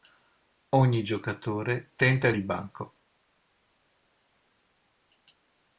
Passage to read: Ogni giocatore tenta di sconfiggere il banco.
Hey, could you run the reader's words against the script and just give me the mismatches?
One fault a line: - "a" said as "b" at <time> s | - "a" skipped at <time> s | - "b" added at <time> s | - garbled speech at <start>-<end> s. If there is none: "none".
- "di sconfiggere" skipped at 2.3 s